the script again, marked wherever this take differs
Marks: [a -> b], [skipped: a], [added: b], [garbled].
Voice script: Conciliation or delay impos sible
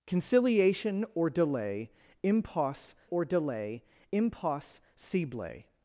Conciliation or delay impos [added: or delay impos] sible